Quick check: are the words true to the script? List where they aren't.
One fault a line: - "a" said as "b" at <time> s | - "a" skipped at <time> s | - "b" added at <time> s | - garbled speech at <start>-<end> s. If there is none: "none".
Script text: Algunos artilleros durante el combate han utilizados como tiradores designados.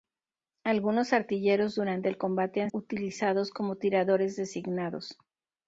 none